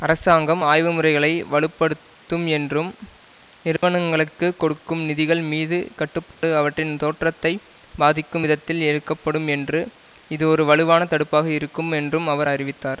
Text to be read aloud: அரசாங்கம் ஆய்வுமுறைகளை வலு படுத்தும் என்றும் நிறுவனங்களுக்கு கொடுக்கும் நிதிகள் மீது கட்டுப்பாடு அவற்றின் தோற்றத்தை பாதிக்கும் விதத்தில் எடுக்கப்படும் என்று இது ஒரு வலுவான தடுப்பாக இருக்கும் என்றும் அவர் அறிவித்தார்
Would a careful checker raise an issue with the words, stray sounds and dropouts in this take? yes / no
yes